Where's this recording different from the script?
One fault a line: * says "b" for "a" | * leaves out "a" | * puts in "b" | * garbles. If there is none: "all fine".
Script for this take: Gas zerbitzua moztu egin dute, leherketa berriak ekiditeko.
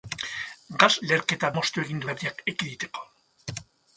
* says "leherketa" for "zerbitzua"
* leaves out "dute leherketa"